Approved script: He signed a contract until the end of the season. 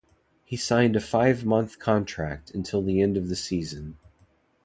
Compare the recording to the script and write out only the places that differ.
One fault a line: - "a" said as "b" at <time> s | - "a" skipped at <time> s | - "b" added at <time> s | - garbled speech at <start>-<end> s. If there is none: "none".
- "five month" added at 1.0 s